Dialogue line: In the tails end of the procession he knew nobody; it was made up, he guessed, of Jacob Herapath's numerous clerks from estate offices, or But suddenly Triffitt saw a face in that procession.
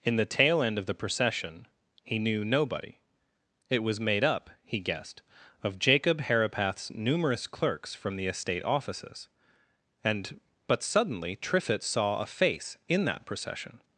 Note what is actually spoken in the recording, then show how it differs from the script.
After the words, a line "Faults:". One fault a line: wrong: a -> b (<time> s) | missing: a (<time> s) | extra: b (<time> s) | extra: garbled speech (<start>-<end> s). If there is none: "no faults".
In the tail end of the procession he knew nobody; it was made up, he guessed, of Jacob Herapath's numerous clerks from the estate offices, and But suddenly Triffitt saw a face in that procession.
Faults:
wrong: tails -> tail (0.2 s)
extra: the (8.2 s)
wrong: or -> and (10.0 s)